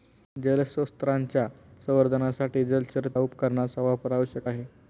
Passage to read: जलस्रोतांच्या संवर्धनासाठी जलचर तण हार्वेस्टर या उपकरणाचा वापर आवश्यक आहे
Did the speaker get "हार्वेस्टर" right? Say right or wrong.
wrong